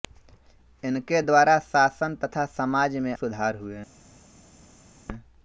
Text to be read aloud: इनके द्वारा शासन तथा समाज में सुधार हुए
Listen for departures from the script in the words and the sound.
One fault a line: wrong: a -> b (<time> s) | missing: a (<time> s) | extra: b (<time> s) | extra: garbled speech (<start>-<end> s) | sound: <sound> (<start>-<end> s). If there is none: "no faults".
no faults